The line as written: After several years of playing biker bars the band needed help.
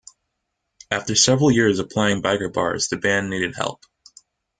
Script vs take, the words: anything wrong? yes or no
no